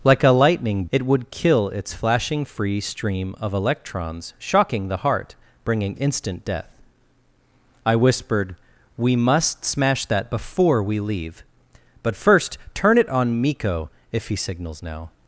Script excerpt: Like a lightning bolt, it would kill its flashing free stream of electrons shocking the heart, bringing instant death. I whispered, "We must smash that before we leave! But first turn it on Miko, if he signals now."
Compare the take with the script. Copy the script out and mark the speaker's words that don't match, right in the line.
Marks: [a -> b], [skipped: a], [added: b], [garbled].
Like a lightning [skipped: bolt,] it would kill its flashing free stream of electrons shocking the heart, bringing instant death. I whispered, "We must smash that before we leave! But first turn it on Miko, if he signals now."